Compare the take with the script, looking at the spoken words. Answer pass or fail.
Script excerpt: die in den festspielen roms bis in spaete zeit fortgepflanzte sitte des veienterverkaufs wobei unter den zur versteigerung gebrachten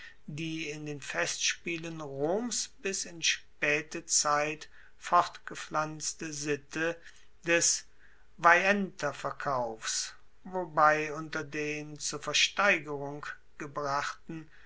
pass